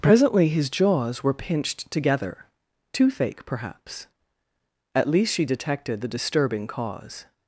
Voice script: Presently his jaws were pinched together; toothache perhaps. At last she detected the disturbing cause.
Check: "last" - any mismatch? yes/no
yes